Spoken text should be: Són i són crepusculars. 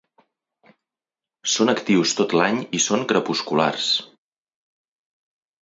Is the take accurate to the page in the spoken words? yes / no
no